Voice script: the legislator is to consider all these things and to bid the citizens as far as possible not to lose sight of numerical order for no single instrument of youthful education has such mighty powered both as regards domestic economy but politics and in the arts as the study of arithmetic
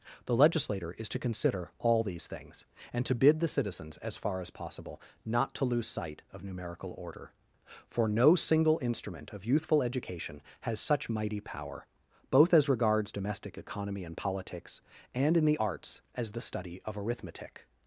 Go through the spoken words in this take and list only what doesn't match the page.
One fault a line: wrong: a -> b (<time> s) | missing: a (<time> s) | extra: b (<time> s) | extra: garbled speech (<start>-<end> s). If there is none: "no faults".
wrong: powered -> power (11.4 s)
wrong: but -> and (14.0 s)